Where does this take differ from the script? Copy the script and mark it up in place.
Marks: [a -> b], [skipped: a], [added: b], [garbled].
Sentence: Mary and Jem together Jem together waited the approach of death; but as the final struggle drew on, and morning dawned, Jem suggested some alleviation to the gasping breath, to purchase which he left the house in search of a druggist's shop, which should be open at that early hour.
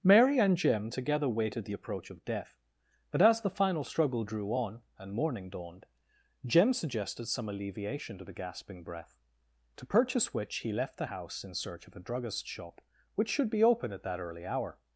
Mary and Jem together [skipped: Jem together] waited the approach of death; but as the final struggle drew on, and morning dawned, Jem suggested some alleviation to the gasping breath, to purchase which he left the house in search of a druggist's shop, which should be open at that early hour.